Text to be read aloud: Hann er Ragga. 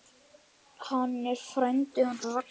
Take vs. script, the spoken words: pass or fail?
fail